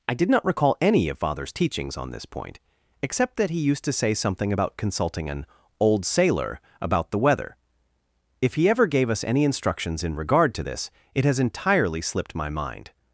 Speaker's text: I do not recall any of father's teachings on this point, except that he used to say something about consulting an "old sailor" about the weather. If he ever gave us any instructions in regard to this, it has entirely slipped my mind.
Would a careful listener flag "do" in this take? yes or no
yes